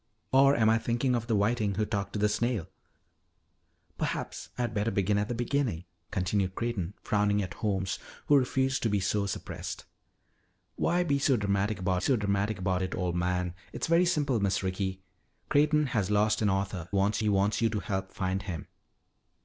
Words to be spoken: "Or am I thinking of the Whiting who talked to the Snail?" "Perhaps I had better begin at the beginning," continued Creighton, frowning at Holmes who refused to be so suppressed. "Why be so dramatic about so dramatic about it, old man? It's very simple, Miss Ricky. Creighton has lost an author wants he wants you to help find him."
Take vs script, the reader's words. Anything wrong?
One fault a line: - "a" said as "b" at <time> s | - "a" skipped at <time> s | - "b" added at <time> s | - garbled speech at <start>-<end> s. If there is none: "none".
none